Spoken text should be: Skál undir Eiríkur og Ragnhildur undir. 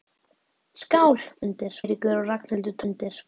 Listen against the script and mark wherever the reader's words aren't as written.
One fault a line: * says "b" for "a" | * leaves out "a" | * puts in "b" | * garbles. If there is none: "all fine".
all fine